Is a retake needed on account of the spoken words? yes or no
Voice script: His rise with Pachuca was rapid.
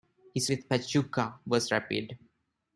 yes